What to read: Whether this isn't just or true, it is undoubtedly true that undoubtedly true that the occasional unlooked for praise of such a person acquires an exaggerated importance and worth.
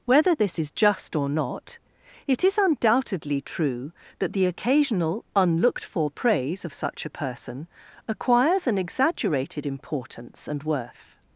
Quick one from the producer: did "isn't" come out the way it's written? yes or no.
no